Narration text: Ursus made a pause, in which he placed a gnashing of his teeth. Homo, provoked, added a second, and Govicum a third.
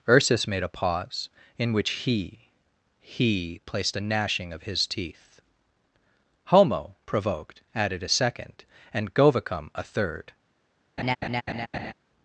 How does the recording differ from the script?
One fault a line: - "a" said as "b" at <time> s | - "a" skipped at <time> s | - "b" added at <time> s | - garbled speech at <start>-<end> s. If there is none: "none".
- "he" added at 3.0 s